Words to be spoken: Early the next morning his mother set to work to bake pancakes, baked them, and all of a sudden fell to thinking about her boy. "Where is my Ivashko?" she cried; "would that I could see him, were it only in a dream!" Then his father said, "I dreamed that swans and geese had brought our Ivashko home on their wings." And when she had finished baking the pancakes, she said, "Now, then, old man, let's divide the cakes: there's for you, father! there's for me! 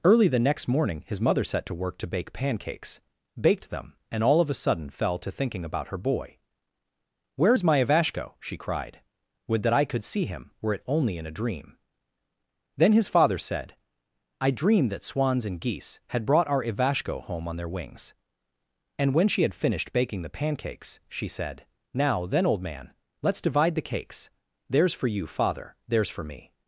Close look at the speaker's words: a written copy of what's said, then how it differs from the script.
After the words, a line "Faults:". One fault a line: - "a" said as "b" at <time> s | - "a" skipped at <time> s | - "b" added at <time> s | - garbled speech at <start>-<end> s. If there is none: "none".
Early the next morning his mother set to work to bake pancakes, baked them, and all of a sudden fell to thinking about her boy. "Where is my Ivashko?" she cried; "would that I could see him, were it only in a dream!" Then his father said, "I dreamed that swans and geese had brought our Ivashko home on their wings." And when she had finished baking the pancakes, she said, "Now, then, old man, let's divide the cakes: there's for you, father! there's for me!
Faults:
none